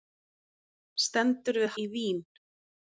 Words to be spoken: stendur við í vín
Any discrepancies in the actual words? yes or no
no